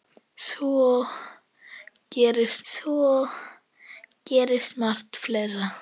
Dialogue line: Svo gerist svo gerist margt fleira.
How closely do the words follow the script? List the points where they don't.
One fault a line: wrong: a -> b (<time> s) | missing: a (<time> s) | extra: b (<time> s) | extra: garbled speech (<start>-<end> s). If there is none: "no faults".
no faults